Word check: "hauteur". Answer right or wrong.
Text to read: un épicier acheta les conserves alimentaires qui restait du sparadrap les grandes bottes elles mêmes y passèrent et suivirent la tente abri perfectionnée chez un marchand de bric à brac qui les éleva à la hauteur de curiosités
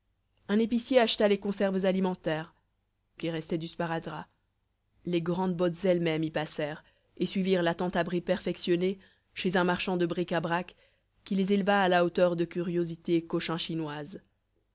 right